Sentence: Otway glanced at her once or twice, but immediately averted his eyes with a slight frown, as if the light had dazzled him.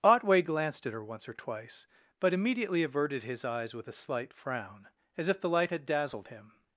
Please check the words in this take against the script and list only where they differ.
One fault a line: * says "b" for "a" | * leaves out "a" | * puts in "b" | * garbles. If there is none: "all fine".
all fine